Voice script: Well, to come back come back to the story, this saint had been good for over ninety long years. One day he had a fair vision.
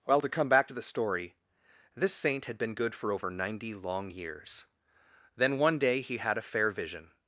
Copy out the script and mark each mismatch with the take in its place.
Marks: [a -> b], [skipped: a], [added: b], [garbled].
Well, to come back [skipped: come back] to the story, this saint had been good for over ninety long years. [added: Then] One day he had a fair vision.